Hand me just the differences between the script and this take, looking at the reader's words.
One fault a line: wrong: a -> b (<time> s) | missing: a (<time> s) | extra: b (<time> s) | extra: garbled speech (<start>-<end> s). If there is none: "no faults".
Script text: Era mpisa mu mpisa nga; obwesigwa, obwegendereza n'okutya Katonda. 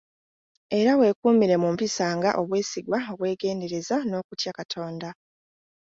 wrong: mpisa -> weekuumire (1.0 s)